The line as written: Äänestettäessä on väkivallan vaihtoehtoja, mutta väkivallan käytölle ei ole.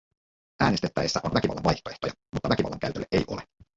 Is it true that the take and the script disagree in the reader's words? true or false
false